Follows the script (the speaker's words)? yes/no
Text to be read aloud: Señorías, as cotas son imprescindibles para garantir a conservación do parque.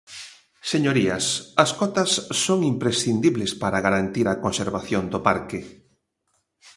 yes